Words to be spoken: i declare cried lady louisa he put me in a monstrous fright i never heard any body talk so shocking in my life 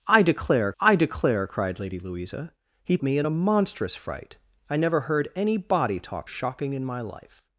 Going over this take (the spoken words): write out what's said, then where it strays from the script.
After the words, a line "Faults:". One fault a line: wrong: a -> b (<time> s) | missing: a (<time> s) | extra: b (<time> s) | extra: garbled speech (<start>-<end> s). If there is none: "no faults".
i declare i declare cried lady louisa he me in a monstrous fright i never heard any body talk shocking in my life
Faults:
extra: i declare (0.8 s)
missing: put (3.0 s)
missing: so (6.3 s)